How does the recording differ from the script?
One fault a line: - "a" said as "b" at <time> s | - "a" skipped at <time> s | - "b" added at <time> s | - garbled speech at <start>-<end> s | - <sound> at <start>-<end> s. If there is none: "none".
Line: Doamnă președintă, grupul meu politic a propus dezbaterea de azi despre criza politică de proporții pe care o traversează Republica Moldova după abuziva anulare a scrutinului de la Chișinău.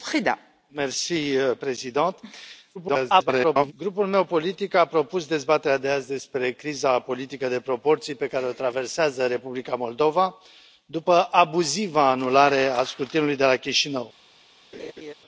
- garbled speech at 2.7-3.7 s
- laugh at 14.7-15.1 s